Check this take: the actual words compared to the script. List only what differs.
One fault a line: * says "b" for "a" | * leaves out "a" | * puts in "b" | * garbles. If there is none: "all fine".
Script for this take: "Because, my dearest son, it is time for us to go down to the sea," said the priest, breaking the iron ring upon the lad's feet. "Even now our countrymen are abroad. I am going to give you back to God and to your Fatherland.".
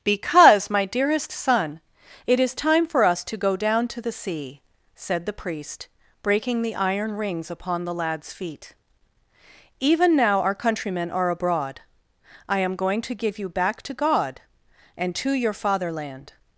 * says "rings" for "ring"